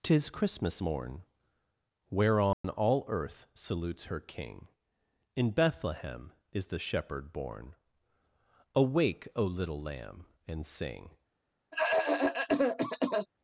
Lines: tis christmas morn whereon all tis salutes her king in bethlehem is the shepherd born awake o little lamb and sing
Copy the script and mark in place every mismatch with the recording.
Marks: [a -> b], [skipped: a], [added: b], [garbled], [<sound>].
tis christmas morn whereon [dropout] all [tis -> earth] salutes her king in bethlehem is the shepherd born awake o little lamb and sing [cough]